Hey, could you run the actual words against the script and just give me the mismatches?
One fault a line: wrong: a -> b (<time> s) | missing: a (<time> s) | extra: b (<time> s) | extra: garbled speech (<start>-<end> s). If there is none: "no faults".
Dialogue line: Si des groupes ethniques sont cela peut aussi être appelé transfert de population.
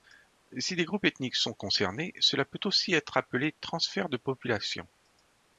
extra: concernés (1.5 s)